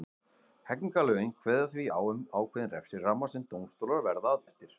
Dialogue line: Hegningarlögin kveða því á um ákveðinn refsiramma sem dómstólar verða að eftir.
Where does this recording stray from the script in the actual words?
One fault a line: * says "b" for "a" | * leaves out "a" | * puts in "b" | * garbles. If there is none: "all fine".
all fine